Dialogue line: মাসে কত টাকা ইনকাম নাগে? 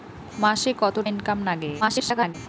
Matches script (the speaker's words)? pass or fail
fail